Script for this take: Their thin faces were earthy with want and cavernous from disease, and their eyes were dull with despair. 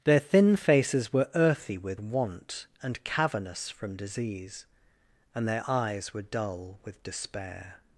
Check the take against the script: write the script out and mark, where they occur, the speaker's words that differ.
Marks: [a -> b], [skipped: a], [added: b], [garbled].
Their thin faces were earthy with want and cavernous from disease, and their eyes were dull with despair.